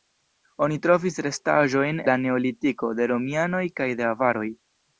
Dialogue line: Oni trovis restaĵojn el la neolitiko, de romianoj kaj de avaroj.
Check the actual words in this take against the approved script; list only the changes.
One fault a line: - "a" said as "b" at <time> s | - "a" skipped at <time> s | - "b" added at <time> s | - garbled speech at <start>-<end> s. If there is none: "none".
- "el" skipped at 2.0 s